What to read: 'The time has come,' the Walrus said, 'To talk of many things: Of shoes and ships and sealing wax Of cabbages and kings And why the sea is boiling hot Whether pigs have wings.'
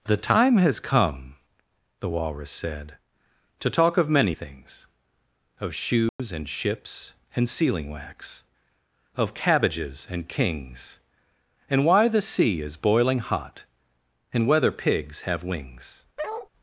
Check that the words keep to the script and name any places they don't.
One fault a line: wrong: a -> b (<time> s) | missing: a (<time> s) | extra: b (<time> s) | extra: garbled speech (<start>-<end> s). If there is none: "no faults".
extra: And (14.3 s)